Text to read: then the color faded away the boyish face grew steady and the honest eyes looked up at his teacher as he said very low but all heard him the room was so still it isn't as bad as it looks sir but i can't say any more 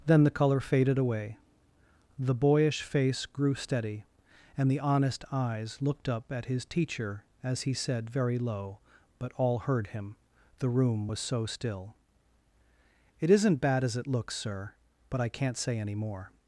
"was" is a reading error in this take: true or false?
false